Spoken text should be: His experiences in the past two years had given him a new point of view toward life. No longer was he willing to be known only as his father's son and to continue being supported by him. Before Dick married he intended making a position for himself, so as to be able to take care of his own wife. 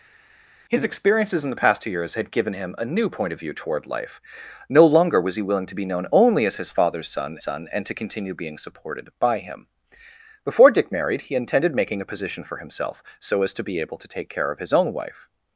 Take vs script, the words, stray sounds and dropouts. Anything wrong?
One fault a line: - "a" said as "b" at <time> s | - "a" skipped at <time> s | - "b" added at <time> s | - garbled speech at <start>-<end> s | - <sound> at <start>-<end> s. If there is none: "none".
- "son" added at 7.4 s